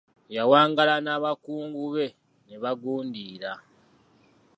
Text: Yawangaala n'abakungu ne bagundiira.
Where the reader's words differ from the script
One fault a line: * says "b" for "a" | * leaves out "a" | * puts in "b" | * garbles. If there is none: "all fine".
* puts in "be"